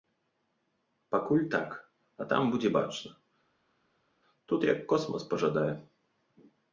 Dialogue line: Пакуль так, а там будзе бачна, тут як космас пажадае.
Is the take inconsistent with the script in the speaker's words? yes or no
no